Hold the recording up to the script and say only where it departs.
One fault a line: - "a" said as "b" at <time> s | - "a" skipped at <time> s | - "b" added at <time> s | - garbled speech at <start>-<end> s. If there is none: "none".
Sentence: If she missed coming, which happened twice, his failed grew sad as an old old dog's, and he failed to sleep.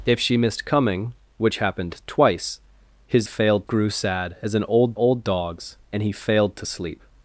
none